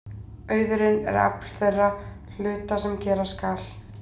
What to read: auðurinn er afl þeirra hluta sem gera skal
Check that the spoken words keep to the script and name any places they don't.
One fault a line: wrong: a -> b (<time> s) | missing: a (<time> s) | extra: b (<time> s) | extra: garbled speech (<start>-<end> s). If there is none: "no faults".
no faults